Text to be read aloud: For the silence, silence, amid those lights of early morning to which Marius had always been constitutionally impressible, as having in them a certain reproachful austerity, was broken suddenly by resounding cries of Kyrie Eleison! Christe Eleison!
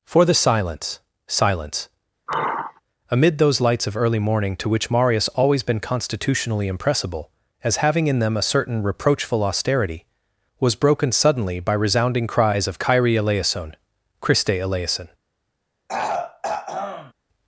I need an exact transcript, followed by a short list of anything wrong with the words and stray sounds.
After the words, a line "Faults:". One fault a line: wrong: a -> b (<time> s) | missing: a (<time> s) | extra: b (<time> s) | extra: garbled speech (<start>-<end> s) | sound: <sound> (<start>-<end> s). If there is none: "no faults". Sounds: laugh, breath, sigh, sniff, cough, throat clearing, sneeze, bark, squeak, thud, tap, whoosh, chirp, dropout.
For the silence, silence, amid those lights of early morning to which Marius always been constitutionally impressible, as having in them a certain reproachful austerity, was broken suddenly by resounding cries of Kyrie Eleison! Christe Eleison!
Faults:
sound: sigh (2.3-2.8 s)
missing: had (5.3 s)
sound: throat clearing (15.9-17.1 s)